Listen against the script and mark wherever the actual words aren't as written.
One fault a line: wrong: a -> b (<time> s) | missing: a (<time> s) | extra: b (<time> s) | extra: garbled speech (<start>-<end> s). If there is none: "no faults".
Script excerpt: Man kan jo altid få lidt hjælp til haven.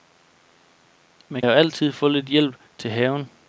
missing: kan (1.4 s)